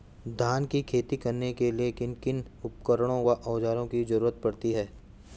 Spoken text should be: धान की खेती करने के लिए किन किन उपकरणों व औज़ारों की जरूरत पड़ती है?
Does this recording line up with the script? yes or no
yes